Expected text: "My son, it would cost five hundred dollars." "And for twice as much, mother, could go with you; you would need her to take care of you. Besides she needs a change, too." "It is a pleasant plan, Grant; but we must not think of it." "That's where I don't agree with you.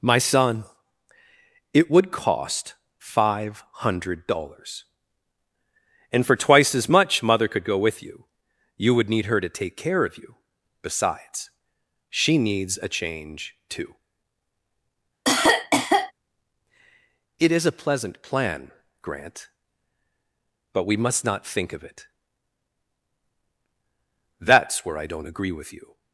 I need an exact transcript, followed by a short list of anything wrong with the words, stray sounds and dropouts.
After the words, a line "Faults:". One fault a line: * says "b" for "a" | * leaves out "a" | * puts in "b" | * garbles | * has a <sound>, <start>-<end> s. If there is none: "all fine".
"My son, it would cost five hundred dollars." "And for twice as much, mother, could go with you; you would need her to take care of you. Besides she needs a change, too." "It is a pleasant plan, Grant; but we must not think of it." "That's where I don't agree with you.
Faults:
* has a cough, 15.2-16.1 s